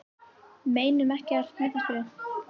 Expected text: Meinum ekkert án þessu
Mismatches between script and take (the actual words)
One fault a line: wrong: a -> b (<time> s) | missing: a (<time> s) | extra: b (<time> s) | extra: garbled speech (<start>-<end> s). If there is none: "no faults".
wrong: án -> með (1.6 s)